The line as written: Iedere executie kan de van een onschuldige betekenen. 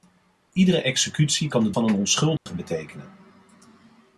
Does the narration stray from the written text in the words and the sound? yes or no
yes